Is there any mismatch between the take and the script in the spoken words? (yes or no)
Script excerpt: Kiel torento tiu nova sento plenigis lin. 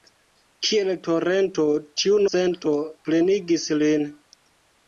yes